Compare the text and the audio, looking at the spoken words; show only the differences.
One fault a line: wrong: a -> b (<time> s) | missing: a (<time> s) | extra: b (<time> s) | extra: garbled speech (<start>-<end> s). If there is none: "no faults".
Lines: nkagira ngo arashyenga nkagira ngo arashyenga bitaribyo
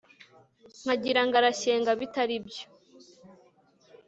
missing: nkagira ngo arashyenga (1.9 s)